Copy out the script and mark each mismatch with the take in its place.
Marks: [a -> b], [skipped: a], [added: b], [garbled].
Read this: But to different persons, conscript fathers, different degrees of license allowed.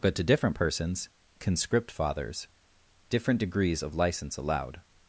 But to different persons, conscript fathers, different degrees of license allowed.